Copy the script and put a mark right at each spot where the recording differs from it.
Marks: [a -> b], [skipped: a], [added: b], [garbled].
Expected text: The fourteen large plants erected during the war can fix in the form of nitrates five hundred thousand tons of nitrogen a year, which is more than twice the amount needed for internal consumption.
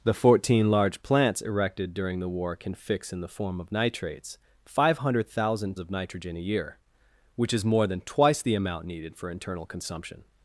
The fourteen large plants erected during the war can fix in the form of nitrates five hundred thousand [skipped: tons] of nitrogen a year, which is more than twice the amount needed for internal consumption.